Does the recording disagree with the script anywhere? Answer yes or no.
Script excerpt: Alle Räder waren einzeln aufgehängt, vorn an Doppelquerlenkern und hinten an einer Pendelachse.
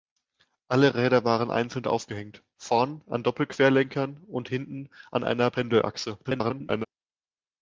yes